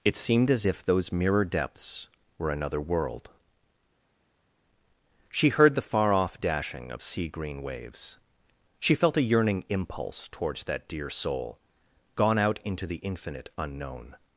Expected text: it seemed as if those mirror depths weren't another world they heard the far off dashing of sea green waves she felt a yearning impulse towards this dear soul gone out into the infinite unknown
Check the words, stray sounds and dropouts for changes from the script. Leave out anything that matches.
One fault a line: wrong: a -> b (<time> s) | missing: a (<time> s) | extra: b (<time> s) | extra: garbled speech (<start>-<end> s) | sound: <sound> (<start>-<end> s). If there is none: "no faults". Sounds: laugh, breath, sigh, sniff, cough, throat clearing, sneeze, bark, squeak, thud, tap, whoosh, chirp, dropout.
wrong: weren't -> were (2.4 s)
wrong: they -> she (5.3 s)
wrong: this -> that (10.6 s)